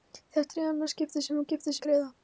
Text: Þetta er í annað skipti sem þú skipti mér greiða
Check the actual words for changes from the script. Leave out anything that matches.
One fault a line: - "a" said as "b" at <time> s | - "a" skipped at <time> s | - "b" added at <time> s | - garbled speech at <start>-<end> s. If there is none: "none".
none